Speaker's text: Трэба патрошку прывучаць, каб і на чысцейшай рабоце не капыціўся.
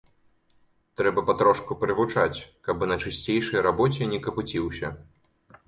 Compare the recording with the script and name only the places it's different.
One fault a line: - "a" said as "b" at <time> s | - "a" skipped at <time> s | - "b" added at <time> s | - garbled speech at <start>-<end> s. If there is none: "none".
none